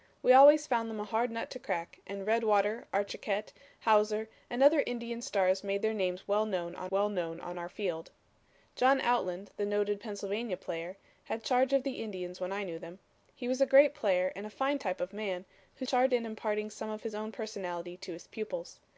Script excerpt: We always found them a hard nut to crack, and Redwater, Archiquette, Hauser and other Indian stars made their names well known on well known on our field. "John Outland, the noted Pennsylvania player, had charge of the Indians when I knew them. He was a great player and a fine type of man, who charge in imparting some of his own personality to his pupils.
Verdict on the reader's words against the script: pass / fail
pass